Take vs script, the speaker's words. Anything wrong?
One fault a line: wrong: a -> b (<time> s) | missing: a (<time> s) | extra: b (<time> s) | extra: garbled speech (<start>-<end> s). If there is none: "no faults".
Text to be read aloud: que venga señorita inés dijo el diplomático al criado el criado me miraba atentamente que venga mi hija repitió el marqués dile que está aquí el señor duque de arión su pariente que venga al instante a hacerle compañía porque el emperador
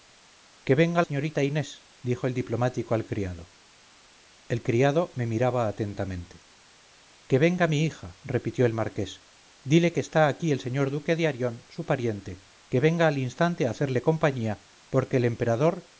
no faults